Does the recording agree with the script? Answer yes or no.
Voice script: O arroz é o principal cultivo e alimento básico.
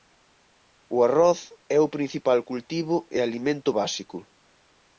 yes